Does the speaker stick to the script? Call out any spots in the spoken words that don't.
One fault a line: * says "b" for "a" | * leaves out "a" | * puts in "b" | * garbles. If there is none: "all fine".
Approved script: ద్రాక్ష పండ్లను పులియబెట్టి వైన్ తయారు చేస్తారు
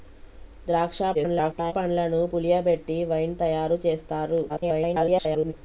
* garbles
* garbles